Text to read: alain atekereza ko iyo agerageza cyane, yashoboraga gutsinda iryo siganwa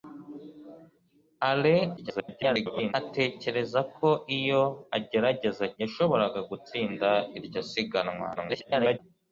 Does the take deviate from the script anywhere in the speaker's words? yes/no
yes